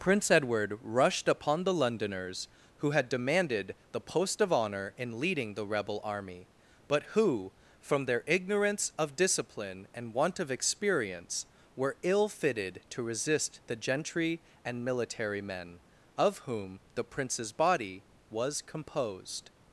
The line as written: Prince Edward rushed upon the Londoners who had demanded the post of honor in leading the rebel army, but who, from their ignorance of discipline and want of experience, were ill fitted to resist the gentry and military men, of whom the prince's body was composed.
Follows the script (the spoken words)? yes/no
yes